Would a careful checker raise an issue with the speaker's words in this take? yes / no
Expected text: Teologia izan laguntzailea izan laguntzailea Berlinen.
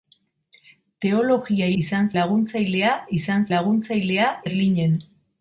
no